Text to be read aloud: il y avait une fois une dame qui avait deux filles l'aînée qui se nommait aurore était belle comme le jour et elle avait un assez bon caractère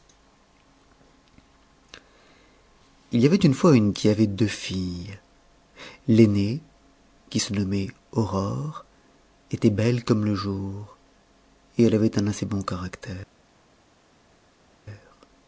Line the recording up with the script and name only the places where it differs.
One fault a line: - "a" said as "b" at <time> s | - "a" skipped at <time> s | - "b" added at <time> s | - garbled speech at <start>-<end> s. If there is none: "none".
- "dame" skipped at 3.9 s